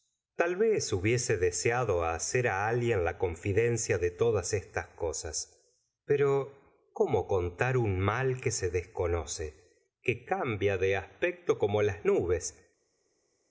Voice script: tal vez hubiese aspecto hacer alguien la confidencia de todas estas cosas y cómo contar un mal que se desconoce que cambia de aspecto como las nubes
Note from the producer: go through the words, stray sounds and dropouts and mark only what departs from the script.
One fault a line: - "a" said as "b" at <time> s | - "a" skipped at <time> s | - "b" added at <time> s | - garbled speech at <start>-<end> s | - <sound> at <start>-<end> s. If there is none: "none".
- "aspecto" said as "deseado" at 1.4 s
- "y" said as "pero" at 6.0 s